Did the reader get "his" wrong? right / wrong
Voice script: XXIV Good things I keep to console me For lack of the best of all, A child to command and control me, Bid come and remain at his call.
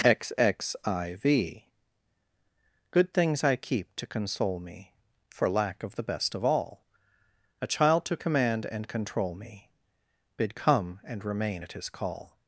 right